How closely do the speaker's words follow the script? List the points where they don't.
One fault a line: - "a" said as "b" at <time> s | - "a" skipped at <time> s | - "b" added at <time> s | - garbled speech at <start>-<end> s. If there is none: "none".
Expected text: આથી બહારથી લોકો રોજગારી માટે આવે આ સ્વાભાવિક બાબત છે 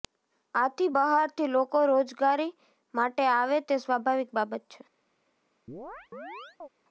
- "આ" said as "તે" at 3.7 s